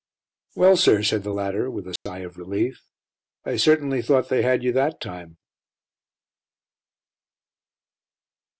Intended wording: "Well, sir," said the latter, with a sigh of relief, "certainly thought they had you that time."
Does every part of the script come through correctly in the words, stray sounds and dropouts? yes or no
no